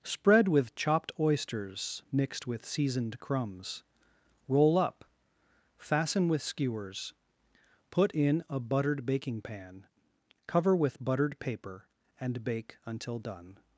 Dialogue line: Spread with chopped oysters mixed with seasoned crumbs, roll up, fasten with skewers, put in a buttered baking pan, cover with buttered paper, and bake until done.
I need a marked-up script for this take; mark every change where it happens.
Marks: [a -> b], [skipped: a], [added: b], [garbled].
Spread with chopped oysters mixed with seasoned crumbs, roll up, fasten with skewers, put in a buttered baking pan, cover with buttered paper, and bake until done.